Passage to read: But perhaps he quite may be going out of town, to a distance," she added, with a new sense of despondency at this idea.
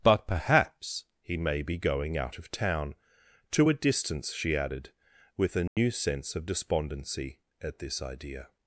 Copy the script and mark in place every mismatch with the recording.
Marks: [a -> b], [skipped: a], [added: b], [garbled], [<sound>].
But perhaps he [skipped: quite] may be going out of town, to a distance," she added, with a new [dropout] sense of despondency at this idea.